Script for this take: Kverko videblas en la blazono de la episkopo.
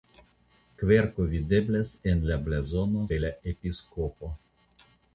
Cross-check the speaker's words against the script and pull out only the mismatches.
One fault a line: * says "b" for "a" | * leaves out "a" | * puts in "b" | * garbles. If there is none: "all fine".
all fine